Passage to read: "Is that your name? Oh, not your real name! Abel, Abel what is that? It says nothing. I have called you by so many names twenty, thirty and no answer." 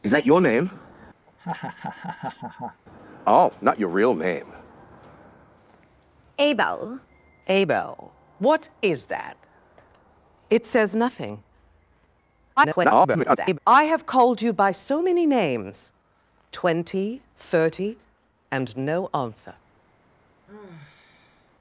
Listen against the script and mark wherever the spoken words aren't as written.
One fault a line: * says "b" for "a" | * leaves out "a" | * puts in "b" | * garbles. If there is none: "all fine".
* garbles